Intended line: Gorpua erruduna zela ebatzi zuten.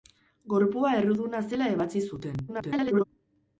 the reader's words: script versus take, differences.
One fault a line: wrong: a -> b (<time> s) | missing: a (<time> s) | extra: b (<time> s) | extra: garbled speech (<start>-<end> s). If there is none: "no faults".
extra: garbled speech (2.5-3.0 s)